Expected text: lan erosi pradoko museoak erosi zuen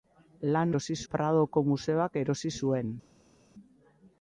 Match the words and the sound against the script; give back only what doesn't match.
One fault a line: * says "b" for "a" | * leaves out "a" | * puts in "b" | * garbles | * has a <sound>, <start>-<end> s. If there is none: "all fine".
all fine